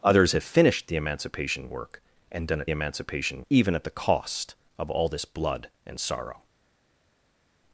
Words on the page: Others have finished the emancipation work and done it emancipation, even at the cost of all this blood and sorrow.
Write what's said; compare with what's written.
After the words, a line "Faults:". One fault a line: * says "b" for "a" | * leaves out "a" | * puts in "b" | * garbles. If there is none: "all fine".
Others have finished the emancipation work and done it emancipation, even at the cost of all this blood and sorrow.
Faults:
all fine